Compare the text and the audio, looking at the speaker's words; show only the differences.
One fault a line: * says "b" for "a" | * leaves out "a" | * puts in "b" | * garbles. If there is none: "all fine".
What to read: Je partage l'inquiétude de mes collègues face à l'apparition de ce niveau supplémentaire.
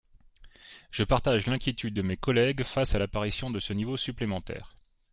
all fine